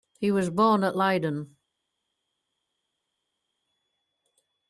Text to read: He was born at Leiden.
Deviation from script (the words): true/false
false